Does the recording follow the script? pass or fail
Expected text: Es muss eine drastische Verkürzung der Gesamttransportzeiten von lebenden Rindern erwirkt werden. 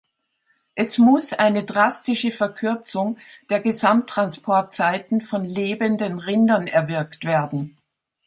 pass